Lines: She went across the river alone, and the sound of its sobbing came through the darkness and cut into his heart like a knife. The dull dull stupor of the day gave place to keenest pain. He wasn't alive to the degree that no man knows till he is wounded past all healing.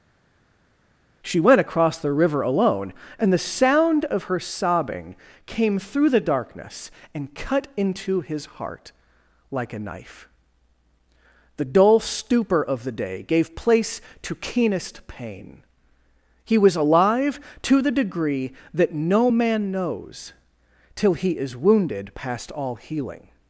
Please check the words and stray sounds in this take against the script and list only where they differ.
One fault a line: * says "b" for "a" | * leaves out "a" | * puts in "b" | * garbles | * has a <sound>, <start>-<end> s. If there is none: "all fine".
* says "her" for "its"
* leaves out "dull"
* says "was" for "wasn't"